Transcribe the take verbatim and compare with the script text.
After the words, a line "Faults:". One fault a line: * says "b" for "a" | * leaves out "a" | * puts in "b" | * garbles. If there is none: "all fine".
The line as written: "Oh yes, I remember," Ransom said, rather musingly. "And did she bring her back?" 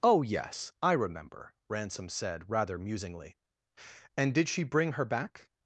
"Oh yes, I remember," Ransom said, rather musingly. "And did she bring her back?"
Faults:
all fine